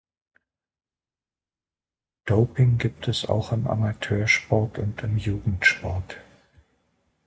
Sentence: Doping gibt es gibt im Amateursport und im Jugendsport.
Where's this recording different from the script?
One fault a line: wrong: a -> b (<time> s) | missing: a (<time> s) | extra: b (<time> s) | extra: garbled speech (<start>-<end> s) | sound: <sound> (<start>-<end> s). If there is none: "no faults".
wrong: gibt -> auch (3.3 s)